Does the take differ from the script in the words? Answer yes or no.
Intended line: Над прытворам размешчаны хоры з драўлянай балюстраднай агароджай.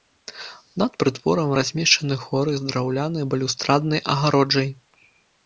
no